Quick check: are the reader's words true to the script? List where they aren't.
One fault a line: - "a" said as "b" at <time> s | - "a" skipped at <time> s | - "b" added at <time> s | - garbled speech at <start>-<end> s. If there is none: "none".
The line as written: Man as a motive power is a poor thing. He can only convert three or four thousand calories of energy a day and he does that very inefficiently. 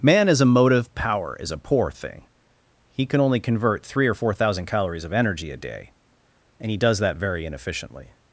none